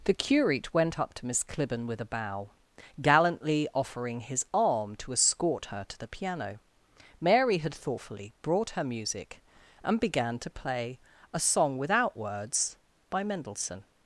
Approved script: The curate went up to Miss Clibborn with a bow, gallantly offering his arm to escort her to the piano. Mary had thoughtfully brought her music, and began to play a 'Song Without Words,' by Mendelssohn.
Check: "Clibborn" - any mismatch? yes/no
no